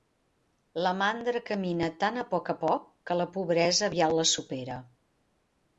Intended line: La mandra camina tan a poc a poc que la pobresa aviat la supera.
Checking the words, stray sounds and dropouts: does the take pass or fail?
pass